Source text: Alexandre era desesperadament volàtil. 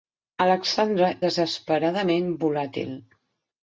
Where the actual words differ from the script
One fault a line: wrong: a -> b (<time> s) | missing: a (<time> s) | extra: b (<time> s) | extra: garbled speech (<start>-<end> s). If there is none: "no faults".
missing: era (1.1 s)